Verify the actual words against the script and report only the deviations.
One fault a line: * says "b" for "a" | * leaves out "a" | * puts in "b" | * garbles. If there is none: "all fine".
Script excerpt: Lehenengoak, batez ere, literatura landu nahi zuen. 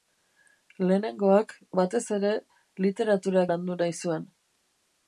all fine